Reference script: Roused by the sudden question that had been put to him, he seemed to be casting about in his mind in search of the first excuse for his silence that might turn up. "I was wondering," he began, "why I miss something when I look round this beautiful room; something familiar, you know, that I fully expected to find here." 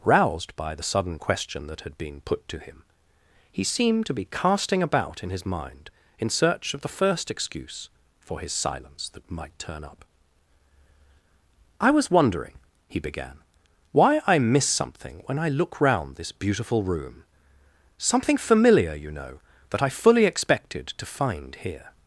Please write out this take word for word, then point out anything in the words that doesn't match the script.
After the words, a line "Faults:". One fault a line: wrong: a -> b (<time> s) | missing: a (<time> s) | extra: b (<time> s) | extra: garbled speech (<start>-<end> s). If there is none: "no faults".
Roused by the sudden question that had been put to him, he seemed to be casting about in his mind in search of the first excuse for his silence that might turn up. "I was wondering," he began, "why I miss something when I look round this beautiful room; something familiar, you know, that I fully expected to find here."
Faults:
no faults